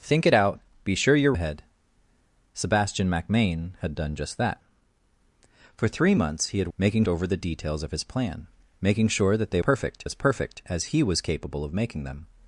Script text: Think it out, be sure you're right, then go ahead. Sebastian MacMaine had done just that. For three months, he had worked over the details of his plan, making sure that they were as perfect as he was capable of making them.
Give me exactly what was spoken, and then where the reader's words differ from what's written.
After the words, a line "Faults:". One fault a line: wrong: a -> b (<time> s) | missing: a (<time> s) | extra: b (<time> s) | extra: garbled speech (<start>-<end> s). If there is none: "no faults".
Think it out, be sure you're ahead. Sebastian MacMaine had done just that. For three months, he had making over the details of his plan, making sure that they perfect as perfect as he was capable of making them.
Faults:
missing: right then go (1.3 s)
wrong: worked -> making (6.8 s)
wrong: were -> perfect (9.6 s)